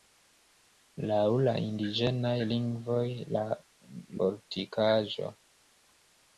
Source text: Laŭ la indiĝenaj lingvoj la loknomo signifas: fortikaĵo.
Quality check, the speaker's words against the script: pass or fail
fail